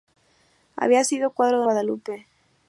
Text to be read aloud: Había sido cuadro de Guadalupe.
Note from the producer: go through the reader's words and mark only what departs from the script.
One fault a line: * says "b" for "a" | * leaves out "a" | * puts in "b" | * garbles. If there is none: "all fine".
all fine